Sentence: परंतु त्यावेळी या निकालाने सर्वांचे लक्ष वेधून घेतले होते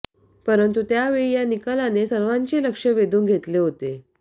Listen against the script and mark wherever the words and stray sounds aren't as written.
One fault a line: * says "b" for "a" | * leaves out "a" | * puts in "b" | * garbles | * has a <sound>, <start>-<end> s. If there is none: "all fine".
all fine